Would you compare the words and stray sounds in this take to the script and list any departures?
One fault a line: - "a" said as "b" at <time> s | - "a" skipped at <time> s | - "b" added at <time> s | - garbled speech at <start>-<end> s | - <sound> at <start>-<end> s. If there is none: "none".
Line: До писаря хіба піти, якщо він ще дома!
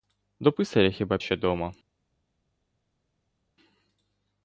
- "піти якщо він" skipped at 1.2 s